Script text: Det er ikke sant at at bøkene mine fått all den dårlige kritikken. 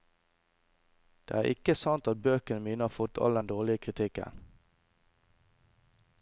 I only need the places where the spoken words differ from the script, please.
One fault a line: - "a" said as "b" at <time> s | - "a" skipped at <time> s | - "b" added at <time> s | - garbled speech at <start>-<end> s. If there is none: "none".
- "at" skipped at 2.2 s
- "har" added at 2.8 s